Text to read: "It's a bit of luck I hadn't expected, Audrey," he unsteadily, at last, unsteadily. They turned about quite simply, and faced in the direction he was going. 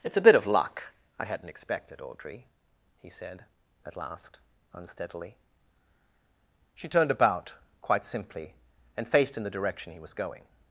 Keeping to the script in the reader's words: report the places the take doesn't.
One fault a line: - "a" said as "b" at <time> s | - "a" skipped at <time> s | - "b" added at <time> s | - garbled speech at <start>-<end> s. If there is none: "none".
- "unsteadily" said as "said" at 3.1 s
- "They" said as "She" at 6.7 s